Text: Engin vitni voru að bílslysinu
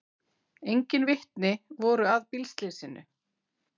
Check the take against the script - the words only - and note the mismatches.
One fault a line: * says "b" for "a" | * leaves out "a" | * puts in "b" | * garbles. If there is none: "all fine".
all fine